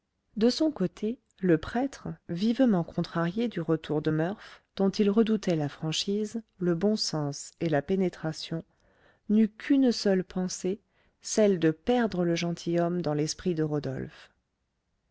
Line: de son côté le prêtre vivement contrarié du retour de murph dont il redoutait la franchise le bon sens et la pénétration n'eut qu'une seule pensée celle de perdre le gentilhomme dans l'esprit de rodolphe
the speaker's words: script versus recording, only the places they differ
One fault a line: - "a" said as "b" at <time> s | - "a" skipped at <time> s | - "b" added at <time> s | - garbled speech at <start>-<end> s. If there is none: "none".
none